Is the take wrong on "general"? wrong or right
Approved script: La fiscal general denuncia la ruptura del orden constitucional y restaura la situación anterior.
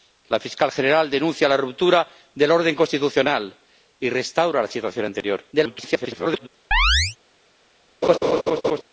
right